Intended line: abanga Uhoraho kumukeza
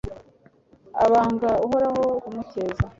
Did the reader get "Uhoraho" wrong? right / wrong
right